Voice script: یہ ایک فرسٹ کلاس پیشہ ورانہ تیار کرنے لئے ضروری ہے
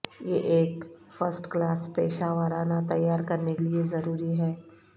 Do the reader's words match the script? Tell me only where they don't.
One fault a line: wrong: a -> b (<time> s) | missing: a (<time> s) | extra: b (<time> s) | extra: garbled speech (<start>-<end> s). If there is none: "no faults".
no faults